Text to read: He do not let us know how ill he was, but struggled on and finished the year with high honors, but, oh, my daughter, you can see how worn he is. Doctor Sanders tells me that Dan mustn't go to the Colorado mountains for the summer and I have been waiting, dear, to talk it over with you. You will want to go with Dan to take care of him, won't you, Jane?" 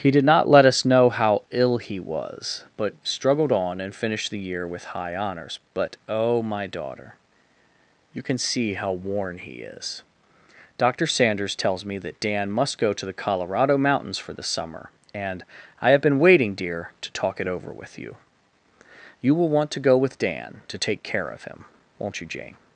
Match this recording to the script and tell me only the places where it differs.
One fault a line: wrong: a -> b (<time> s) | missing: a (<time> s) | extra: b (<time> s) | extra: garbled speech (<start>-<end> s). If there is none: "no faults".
wrong: do -> did (0.1 s)
wrong: mustn't -> must (12.5 s)